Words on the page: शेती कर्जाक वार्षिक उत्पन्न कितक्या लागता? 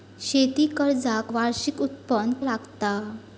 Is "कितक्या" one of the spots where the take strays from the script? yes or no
yes